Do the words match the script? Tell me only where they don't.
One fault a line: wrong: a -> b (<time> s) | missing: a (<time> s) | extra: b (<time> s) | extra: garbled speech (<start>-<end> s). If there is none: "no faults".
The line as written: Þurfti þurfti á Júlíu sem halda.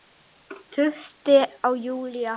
missing: þurfti (1.4 s)
wrong: sem -> að (2.0 s)